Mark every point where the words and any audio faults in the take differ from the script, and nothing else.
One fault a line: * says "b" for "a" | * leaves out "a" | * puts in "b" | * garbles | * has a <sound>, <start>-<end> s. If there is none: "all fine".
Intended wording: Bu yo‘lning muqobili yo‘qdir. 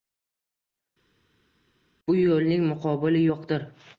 all fine